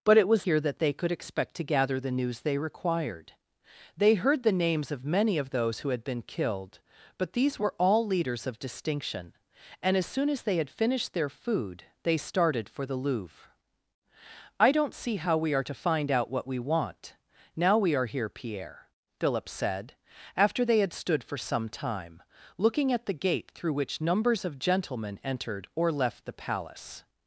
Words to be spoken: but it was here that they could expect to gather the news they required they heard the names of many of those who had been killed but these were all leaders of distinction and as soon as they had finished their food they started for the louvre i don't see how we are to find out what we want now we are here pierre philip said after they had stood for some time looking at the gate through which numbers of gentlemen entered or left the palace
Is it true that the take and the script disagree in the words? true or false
false